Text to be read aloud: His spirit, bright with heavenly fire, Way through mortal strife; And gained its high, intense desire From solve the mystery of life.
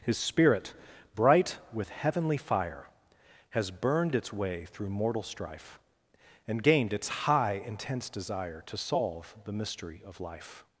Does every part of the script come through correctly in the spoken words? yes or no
no